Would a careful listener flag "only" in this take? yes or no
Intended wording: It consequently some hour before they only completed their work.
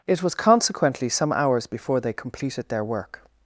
yes